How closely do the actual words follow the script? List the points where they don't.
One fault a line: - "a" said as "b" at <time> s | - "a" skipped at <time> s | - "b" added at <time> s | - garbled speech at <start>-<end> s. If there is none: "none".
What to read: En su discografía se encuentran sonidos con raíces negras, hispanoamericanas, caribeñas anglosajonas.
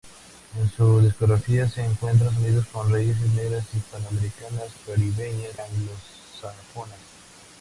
none